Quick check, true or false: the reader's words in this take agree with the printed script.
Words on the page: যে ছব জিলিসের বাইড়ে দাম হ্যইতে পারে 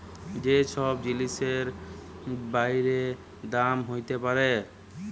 true